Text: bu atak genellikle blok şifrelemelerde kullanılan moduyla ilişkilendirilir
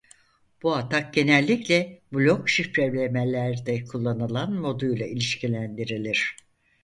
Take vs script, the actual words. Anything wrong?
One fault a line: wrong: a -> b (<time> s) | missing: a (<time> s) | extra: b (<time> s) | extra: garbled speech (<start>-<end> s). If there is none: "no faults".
no faults